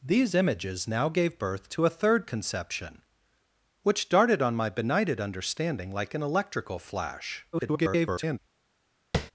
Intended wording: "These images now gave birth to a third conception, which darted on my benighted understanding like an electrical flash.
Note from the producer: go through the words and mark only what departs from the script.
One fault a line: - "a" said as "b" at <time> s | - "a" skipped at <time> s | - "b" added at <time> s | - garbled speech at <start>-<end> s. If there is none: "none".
- garbled speech at 7.5-8.4 s